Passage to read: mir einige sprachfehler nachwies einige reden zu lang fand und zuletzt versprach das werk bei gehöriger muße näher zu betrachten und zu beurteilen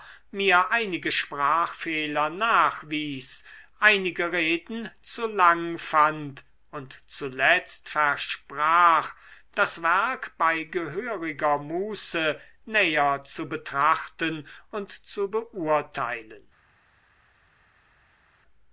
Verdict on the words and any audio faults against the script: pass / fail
pass